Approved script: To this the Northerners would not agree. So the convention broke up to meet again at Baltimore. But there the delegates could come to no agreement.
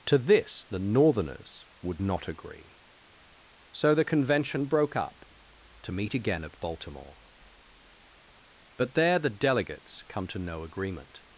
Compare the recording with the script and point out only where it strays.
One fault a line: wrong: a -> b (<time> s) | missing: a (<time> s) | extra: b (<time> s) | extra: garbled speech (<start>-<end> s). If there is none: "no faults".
missing: could (10.0 s)